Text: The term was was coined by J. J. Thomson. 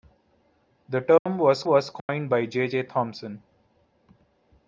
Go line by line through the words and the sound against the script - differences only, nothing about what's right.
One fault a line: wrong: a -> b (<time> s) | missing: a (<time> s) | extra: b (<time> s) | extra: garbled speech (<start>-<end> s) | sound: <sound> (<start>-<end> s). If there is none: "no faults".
sound: dropout (1.2-1.3 s)
sound: dropout (2.0-2.1 s)